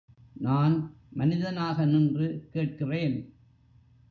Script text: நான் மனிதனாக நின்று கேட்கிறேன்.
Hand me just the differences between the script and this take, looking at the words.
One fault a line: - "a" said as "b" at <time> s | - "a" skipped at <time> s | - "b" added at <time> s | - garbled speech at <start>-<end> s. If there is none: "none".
none